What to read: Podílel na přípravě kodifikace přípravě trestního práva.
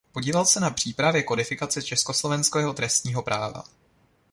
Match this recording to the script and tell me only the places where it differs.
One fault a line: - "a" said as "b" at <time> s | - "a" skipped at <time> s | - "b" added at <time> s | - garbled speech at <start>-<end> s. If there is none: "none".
- "se" added at 0.5 s
- "přípravě" said as "československého" at 1.8 s